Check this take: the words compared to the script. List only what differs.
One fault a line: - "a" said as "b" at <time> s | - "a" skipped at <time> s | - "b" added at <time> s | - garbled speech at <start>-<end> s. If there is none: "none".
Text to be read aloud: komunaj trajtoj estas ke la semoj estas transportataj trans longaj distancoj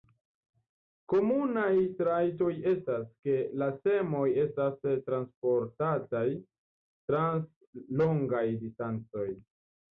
none